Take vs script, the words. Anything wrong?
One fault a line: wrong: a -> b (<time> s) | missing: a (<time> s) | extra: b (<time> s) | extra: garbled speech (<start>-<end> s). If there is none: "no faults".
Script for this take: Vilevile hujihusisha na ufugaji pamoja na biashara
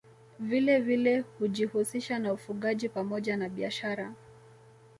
no faults